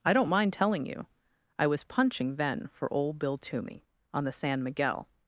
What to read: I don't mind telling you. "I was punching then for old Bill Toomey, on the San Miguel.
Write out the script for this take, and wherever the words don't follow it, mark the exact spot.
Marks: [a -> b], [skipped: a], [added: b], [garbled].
I don't mind telling you. "I was punching then for old Bill Toomey, on the San Miguel.